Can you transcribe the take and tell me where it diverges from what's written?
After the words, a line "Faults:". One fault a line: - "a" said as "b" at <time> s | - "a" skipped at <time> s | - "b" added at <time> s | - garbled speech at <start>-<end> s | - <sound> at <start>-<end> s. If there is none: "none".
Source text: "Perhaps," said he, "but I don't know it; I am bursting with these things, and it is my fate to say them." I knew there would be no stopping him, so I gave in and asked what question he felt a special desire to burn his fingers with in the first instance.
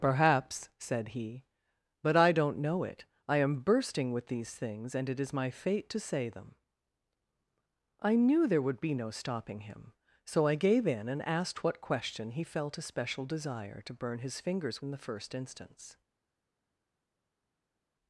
"Perhaps," said he, "but I don't know it; I am bursting with these things, and it is my fate to say them." I knew there would be no stopping him, so I gave in and asked what question he felt a special desire to burn his fingers in the first instance.
Faults:
- "with" skipped at 14.8 s